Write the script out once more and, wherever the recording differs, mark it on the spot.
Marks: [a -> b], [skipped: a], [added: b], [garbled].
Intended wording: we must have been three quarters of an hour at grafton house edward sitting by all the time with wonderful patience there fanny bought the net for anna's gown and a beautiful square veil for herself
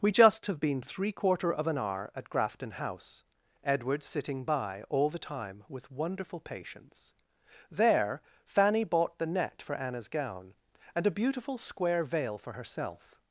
we [must -> just] have been three [quarters -> quarter] of an hour at grafton house edward sitting by all the time with wonderful patience there fanny bought the net for anna's gown and a beautiful square veil for herself